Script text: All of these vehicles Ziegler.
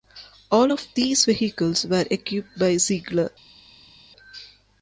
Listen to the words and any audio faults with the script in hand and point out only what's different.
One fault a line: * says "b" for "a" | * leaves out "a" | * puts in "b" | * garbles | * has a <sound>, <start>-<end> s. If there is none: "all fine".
* puts in "were equipped by"